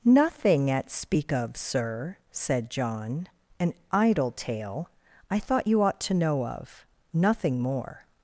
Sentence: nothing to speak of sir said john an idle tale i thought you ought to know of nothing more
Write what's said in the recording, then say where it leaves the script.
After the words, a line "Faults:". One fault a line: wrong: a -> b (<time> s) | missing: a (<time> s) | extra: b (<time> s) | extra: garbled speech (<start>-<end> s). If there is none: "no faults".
nothing at speak of sir said john an idle tale i thought you ought to know of nothing more
Faults:
wrong: to -> at (0.7 s)